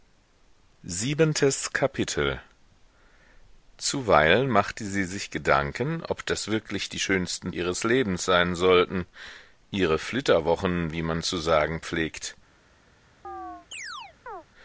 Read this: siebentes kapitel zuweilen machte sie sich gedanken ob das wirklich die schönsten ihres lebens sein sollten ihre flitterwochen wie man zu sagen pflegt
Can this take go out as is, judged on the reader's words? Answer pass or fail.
pass